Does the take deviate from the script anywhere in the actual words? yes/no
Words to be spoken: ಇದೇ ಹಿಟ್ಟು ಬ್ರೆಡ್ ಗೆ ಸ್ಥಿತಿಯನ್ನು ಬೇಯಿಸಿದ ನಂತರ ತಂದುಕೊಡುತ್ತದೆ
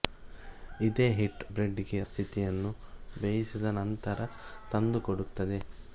no